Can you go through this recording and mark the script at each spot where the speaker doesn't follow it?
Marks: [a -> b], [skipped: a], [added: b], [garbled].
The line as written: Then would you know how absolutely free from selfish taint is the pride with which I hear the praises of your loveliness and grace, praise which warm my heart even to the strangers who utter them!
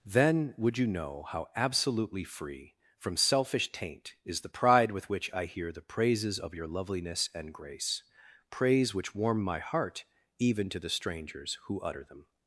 Then would you know how absolutely free from selfish taint is the pride with which I hear the praises of your loveliness and grace, praise which warm my heart even to the strangers who utter them!